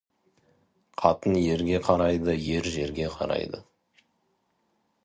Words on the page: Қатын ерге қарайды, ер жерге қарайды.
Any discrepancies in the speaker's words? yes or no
no